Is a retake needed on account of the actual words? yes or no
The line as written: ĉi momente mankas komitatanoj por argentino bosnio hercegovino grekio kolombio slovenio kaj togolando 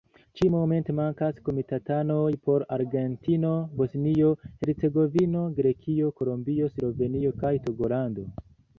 no